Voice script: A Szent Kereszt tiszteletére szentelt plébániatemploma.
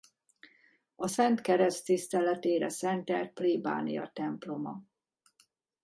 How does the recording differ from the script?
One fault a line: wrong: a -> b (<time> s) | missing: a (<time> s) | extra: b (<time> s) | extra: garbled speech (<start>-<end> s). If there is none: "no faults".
no faults